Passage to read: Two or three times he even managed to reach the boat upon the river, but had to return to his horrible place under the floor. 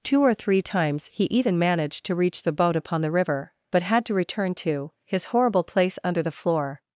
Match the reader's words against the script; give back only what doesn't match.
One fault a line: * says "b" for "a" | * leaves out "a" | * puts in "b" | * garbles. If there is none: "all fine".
all fine